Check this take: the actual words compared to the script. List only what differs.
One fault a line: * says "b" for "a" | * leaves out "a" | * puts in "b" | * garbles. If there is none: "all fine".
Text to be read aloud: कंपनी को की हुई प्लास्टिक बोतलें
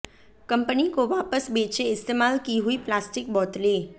* puts in "वापस बेचें इस्तेमाल"